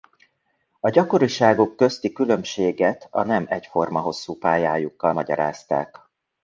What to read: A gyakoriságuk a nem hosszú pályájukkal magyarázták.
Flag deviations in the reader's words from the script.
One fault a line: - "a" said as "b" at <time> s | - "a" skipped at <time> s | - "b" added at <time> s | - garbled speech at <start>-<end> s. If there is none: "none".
- "közti különbséget" added at 1.8 s
- "egyforma" added at 3.5 s